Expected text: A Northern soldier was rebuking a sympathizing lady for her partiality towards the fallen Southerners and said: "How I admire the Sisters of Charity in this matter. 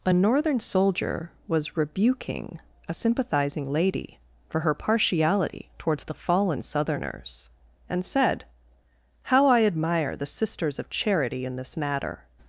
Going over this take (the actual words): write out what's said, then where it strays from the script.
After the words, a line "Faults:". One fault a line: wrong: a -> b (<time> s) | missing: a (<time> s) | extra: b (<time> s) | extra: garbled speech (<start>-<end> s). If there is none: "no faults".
A Northern soldier was rebuking a sympathizing lady for her partiality towards the fallen Southerners and said: "How I admire the Sisters of Charity in this matter.
Faults:
no faults